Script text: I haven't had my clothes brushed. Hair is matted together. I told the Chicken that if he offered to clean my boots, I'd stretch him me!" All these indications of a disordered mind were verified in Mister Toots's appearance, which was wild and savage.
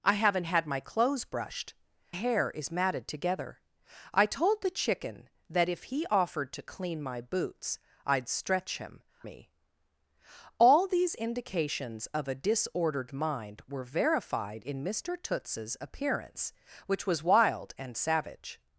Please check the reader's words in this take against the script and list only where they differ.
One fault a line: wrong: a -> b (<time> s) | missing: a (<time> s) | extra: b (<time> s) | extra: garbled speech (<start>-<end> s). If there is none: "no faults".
no faults